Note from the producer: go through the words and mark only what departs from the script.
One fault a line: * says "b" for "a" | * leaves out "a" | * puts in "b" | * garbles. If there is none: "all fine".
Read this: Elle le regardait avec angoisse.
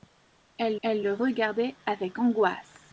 * puts in "elle"